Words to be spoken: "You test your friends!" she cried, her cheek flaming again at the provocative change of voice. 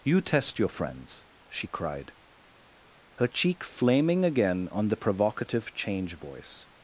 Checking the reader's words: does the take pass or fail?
fail